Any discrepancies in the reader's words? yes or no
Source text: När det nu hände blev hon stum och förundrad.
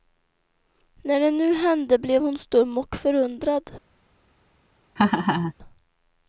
no